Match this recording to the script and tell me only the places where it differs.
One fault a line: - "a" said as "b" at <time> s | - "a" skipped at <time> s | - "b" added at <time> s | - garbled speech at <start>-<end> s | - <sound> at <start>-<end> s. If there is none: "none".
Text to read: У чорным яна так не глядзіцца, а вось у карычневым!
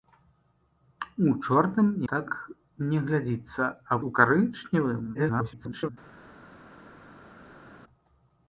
- "яна" skipped at 1.9 s
- "вось" skipped at 4.0 s
- garbled speech at 5.1-5.9 s